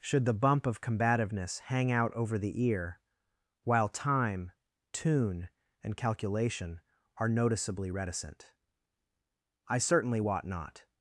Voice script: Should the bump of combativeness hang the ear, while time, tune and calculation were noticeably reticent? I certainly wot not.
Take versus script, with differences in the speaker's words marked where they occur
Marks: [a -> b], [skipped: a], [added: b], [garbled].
Should the bump of combativeness hang [added: out over] the ear, while time, tune and calculation [were -> are] noticeably reticent? I certainly wot not.